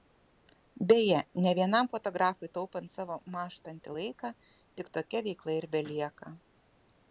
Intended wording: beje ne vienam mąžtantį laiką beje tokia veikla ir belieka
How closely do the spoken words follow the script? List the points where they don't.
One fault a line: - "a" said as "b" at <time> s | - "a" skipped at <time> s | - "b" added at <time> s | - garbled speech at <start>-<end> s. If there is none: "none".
- "fotografui taupant savo" added at 1.9 s
- "beje" said as "tik" at 4.5 s